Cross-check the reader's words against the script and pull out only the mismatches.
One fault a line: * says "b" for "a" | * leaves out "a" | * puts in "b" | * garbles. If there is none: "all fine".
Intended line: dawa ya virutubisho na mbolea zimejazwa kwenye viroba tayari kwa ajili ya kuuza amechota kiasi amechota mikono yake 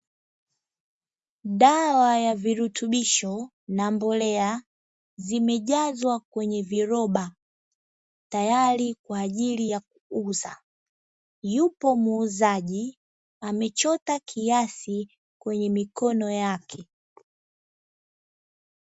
* puts in "yupo muuzaji"
* says "kwenye" for "amechota"